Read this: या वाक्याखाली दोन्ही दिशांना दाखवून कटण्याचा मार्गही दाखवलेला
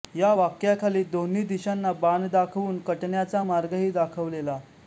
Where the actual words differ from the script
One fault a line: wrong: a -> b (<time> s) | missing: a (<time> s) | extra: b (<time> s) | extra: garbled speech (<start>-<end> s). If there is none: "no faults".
extra: बाण (1.9 s)